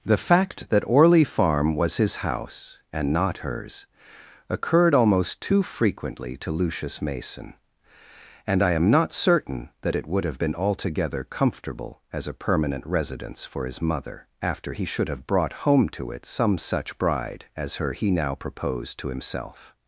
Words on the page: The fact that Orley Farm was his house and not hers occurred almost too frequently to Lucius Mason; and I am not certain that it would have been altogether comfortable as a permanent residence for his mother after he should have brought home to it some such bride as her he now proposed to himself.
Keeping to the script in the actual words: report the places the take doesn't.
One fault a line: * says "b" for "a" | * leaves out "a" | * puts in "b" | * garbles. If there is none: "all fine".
all fine